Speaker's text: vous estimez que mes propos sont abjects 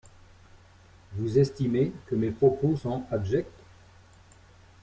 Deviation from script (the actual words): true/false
false